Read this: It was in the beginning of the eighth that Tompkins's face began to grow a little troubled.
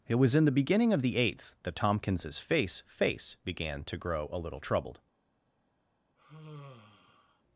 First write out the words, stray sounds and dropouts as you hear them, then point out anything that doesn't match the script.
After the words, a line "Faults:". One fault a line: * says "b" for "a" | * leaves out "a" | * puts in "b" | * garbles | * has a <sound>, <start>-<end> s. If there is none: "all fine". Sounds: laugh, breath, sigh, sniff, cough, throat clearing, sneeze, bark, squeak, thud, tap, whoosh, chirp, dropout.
It was in the beginning of the eighth that Tompkins's face face began to grow a little troubled.
Faults:
* puts in "face"
* has a sigh, 6.2-7.4 s